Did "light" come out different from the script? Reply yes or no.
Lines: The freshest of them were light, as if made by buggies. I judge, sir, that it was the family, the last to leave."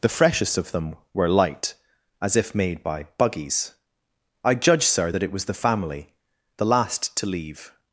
no